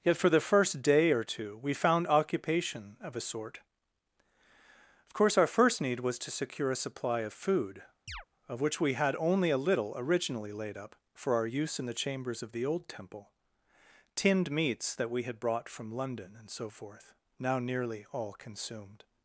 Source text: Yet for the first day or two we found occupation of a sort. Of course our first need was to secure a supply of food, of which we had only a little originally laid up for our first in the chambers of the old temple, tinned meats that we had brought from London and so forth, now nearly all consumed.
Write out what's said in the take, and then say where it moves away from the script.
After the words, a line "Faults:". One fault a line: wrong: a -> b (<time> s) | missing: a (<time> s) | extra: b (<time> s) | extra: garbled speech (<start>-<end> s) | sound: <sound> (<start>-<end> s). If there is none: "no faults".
Yet for the first day or two we found occupation of a sort. Of course our first need was to secure a supply of food, of which we had only a little originally laid up for our use in the chambers of the old temple, tinned meats that we had brought from London and so forth, now nearly all consumed.
Faults:
sound: chirp (8.1-8.3 s)
wrong: first -> use (11.5 s)